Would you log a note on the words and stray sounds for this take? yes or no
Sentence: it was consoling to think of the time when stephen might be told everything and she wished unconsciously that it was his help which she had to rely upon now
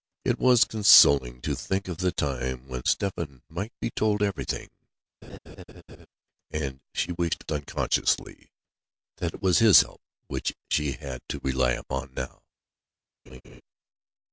yes